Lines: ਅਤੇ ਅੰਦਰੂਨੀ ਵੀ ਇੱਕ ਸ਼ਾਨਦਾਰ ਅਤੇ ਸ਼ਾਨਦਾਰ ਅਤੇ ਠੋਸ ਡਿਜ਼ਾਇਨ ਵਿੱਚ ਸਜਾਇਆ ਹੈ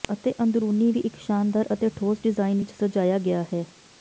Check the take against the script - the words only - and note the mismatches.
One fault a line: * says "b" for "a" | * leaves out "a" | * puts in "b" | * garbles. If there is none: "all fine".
* leaves out "ਸ਼ਾਨਦਾਰ ਅਤੇ"
* puts in "ਗਿਆ"